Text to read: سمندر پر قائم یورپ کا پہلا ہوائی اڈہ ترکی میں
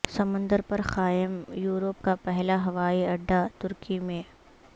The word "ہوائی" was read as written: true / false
true